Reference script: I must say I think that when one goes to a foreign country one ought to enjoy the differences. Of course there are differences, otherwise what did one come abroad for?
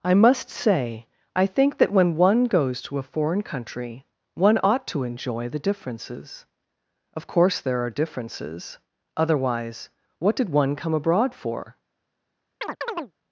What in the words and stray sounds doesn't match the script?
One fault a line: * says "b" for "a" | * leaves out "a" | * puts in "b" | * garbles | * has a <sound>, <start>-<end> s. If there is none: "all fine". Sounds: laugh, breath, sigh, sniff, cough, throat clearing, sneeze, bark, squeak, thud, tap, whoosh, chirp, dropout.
* has a chirp, 12.6-13.1 s